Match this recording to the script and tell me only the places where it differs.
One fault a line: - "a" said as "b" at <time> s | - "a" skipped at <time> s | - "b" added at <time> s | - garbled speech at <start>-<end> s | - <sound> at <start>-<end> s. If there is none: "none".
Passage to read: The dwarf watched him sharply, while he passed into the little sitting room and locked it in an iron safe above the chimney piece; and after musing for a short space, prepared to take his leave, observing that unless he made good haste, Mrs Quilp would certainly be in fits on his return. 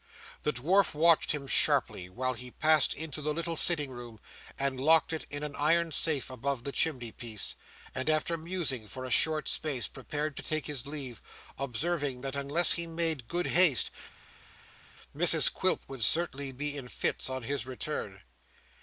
none